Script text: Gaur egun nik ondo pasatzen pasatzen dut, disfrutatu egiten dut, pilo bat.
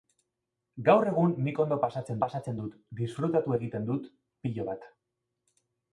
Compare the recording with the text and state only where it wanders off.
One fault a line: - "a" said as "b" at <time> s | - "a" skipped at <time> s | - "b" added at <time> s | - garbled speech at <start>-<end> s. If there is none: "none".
none